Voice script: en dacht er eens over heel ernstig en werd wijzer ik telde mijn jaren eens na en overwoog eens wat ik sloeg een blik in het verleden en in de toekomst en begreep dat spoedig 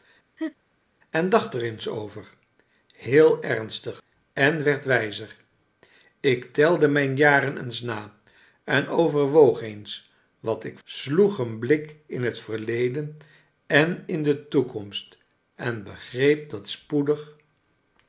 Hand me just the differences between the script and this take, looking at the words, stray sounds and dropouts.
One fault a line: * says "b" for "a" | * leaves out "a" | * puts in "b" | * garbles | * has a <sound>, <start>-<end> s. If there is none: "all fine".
* has a laugh, 0.4-0.5 s